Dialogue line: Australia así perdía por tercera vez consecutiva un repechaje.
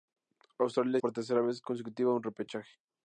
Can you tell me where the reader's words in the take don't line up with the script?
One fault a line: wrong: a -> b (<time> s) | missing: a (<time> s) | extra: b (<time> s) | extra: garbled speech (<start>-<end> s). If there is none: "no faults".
missing: así perdía (1.0 s)